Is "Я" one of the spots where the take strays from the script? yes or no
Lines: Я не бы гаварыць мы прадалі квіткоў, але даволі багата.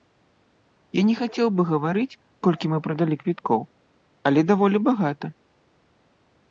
no